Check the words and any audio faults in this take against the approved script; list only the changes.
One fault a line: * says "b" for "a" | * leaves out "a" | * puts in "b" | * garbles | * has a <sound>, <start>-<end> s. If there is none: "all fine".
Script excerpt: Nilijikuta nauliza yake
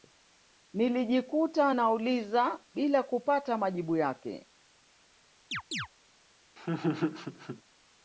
* puts in "bila kupata majibu"
* has a chirp, 5.5-5.9 s
* has a laugh, 6.6-7.6 s